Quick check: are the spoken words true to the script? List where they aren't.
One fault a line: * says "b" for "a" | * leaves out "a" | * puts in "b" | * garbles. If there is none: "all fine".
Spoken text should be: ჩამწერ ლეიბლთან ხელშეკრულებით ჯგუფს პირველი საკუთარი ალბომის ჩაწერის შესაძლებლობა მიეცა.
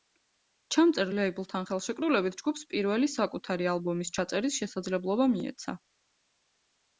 all fine